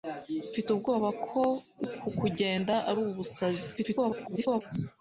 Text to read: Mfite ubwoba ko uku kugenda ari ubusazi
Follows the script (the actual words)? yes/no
no